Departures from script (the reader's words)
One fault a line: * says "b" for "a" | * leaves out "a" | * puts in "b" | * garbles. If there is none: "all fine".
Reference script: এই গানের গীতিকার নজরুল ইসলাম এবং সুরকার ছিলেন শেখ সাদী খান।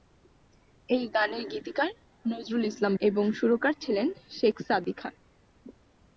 all fine